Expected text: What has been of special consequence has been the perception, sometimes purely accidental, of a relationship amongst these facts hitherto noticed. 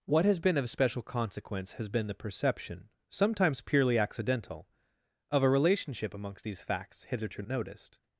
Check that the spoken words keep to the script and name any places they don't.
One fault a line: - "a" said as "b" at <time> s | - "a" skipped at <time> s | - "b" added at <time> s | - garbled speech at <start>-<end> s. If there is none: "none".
none